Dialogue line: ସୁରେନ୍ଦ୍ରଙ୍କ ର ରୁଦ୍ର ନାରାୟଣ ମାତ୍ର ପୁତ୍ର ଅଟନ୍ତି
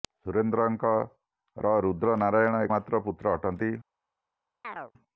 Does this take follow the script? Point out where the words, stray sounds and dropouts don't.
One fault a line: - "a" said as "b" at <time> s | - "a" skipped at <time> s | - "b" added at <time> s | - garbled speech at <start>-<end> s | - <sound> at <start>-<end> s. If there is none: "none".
- chirp at 4.6-4.9 s